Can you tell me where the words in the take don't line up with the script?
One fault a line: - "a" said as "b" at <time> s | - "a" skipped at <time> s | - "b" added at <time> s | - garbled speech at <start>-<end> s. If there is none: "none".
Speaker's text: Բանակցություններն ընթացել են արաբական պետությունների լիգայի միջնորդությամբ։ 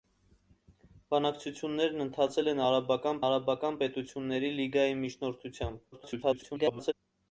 - "արաբական" added at 3.3 s
- garbled speech at 5.9-6.9 s